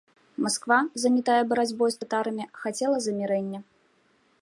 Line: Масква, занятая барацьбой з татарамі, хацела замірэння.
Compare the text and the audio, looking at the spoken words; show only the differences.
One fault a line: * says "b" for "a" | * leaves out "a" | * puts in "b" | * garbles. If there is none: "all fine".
all fine